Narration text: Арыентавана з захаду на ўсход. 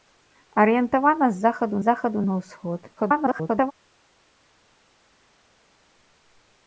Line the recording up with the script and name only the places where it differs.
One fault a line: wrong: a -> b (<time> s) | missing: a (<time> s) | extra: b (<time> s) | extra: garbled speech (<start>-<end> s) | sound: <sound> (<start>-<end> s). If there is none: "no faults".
extra: захаду (1.9 s)
extra: garbled speech (3.0-3.7 s)